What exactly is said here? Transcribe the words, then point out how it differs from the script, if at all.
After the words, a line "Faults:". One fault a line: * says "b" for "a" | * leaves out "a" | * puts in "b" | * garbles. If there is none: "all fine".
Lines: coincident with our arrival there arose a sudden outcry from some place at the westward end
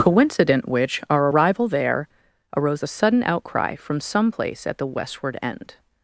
coincident which our arrival there arose a sudden outcry from some place at the westward end
Faults:
* says "which" for "with"